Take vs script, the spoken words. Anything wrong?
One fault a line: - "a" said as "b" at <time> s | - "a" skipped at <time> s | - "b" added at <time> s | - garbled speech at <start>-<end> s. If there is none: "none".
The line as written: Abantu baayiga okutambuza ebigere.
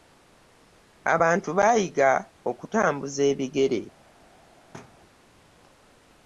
none